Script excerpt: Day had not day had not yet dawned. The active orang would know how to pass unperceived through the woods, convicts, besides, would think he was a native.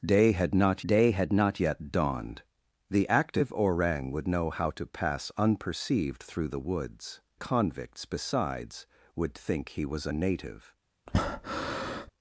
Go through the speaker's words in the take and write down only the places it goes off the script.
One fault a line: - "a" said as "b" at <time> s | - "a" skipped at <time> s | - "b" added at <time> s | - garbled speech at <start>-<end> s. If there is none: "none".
none